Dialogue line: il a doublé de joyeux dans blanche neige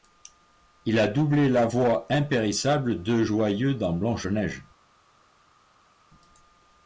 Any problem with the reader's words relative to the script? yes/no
yes